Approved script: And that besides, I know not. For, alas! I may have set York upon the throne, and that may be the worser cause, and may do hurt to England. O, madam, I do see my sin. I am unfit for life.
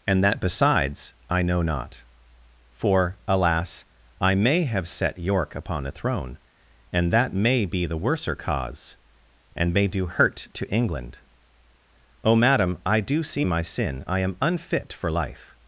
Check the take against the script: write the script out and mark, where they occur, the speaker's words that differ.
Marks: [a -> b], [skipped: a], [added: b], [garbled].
And that besides, I know not. For, alas! I may have set York upon the throne, and that may be the worser cause, and may do hurt to England. O, madam, I do see my sin. I am unfit for life.